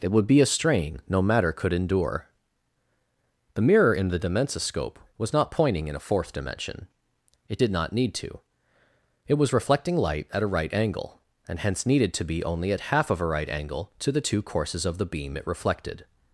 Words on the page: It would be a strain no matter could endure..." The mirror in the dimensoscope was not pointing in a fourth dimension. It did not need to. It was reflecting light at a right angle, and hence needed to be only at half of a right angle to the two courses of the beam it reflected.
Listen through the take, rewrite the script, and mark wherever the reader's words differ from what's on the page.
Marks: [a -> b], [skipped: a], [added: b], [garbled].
It would be a strain no matter could endure..." The mirror in the dimensoscope was not pointing in a fourth dimension. It did not need to. It was reflecting light at a right angle, and hence needed to be only at half of a right angle to the two courses of the beam it reflected.